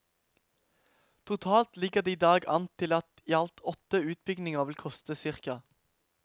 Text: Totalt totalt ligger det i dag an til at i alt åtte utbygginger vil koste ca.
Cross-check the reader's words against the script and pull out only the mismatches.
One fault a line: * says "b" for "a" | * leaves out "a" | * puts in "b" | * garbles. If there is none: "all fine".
* leaves out "totalt"